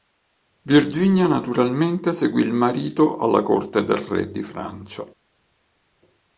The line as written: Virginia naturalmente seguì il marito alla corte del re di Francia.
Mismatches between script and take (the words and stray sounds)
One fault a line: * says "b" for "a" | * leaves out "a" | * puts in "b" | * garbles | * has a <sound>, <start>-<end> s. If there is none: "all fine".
all fine